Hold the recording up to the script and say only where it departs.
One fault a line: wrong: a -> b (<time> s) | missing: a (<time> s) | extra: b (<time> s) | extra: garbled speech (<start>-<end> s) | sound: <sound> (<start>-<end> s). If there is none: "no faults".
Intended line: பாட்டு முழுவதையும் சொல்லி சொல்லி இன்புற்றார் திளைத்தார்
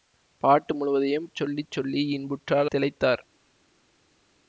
no faults